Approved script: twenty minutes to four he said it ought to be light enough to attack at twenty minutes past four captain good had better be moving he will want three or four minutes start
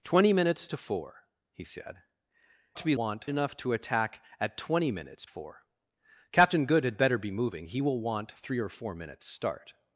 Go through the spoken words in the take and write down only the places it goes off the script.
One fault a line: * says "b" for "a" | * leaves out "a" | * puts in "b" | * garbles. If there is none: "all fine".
* leaves out "it ought"
* says "want" for "light"
* leaves out "past"